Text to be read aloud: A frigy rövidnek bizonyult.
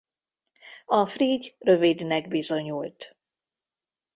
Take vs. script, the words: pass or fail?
pass